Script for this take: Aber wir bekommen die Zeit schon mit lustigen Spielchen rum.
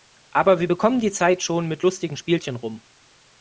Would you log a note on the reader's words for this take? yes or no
no